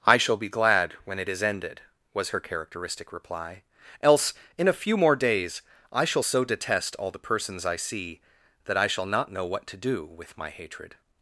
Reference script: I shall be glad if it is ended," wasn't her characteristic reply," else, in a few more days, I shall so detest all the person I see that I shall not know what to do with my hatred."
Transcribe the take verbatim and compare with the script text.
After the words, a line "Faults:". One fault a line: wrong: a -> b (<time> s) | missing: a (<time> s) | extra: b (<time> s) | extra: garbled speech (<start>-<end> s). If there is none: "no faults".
I shall be glad when it is ended," was her characteristic reply," else, in a few more days, I shall so detest all the persons I see that I shall not know what to do with my hatred."
Faults:
wrong: if -> when (1.0 s)
wrong: wasn't -> was (2.1 s)
wrong: person -> persons (7.2 s)